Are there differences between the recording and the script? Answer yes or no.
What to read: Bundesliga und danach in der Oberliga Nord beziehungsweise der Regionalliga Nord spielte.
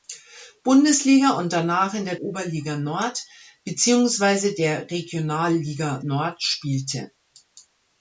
no